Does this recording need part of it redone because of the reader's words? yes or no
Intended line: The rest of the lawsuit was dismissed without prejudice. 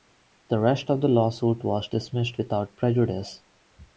no